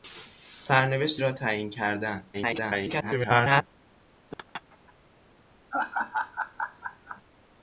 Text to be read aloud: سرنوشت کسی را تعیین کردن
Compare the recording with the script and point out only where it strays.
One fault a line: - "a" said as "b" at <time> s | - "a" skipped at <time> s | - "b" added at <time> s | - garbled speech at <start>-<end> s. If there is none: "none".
- "کسی" skipped at 1.2 s
- garbled speech at 2.3-3.7 s